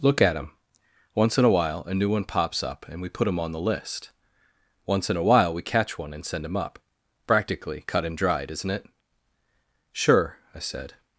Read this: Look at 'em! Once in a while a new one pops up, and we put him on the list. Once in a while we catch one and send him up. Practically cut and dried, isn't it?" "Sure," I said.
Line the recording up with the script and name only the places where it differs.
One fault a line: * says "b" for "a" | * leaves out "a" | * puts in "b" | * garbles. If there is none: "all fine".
all fine